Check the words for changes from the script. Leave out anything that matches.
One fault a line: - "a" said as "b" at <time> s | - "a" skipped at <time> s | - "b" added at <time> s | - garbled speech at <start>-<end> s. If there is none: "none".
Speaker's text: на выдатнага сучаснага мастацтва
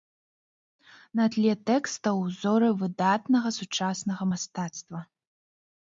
- "тле тэкстаў узоры" added at 1.3 s